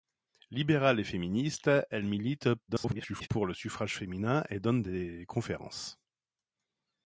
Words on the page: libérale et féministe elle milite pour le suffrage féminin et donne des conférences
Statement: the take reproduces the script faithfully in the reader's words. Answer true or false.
false